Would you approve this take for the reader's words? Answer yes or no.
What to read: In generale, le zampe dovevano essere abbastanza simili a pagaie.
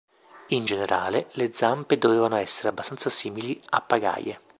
yes